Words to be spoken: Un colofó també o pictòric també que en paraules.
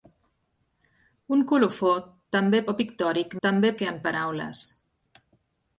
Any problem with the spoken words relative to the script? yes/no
no